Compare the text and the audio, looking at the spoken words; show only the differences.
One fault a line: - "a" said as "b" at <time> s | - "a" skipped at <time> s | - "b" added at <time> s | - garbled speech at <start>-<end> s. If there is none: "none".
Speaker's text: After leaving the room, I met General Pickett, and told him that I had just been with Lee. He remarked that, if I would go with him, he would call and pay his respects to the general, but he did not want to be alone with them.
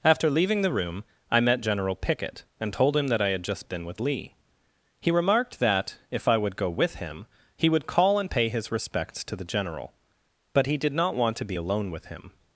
- "them" said as "him" at 12.1 s